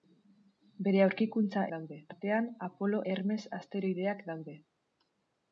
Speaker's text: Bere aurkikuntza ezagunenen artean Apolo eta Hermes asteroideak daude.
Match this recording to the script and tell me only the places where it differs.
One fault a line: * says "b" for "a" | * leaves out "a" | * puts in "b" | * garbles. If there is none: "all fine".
* says "daude" for "ezagunenen"
* leaves out "eta"